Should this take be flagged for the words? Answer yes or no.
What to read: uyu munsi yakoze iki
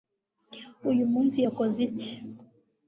no